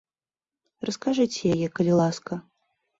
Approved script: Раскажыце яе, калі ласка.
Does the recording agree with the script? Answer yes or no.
yes